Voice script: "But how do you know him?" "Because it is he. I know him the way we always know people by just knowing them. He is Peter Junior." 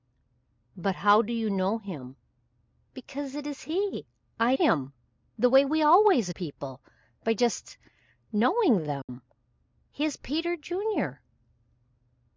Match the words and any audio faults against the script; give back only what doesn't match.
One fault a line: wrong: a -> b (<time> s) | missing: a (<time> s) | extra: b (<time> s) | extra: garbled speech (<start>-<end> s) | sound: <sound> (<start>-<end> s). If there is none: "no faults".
missing: know (4.6 s)
missing: know (6.3 s)
sound: dropout (9.0-9.1 s)